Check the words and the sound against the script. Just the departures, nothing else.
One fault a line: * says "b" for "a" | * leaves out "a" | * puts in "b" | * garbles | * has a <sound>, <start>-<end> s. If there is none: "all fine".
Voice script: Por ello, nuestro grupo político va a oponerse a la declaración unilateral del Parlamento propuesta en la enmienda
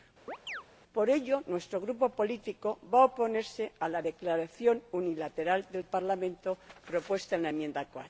* has a chirp, 0.3-0.6 s